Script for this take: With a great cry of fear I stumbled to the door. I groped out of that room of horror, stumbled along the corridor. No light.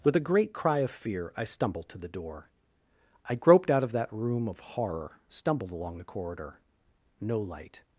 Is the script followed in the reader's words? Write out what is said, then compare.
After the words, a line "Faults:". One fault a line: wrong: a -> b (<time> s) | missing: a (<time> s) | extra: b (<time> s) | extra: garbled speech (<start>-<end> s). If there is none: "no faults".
With a great cry of fear I stumbled to the door. I groped out of that room of horror, stumbled along the corridor. No light.
Faults:
no faults